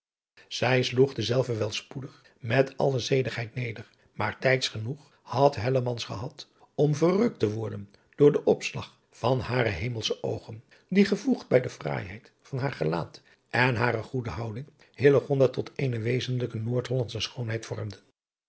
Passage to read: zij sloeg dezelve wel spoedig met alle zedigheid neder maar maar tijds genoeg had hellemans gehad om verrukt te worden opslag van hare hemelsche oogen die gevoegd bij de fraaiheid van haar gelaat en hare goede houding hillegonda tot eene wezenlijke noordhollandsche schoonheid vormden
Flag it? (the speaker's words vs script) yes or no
yes